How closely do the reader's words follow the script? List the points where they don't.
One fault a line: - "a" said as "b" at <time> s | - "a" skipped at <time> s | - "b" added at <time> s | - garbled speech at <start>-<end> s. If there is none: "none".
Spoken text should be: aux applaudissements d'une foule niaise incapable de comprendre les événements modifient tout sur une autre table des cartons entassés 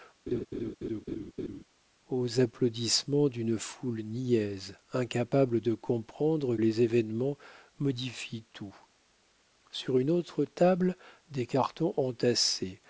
none